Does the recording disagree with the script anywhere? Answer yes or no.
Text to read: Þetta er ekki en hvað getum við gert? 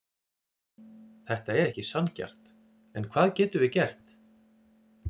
yes